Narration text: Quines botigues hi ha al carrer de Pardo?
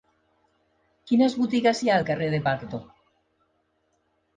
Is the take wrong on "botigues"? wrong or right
right